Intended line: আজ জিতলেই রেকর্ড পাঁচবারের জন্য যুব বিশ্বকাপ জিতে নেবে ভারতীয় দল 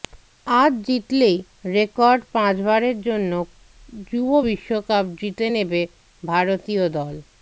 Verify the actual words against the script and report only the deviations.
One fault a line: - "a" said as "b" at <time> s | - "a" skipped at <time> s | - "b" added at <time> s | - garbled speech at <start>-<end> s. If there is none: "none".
none